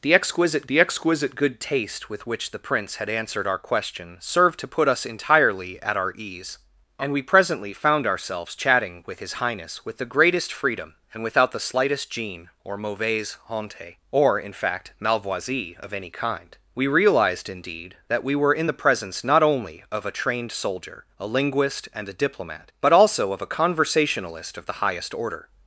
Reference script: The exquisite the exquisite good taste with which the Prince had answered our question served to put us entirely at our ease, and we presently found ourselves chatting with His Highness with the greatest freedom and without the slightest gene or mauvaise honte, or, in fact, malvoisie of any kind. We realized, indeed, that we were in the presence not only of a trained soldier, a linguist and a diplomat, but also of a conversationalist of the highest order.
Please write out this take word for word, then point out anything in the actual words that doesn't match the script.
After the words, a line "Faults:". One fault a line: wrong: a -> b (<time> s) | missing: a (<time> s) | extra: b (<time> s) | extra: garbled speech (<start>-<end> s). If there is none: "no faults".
The exquisite the exquisite good taste with which the Prince had answered our question served to put us entirely at our ease, and we presently found ourselves chatting with His Highness with the greatest freedom and without the slightest gene or mauvaise honte, or, in fact, malvoisie of any kind. We realized, indeed, that we were in the presence not only of a trained soldier, a linguist and a diplomat, but also of a conversationalist of the highest order.
Faults:
no faults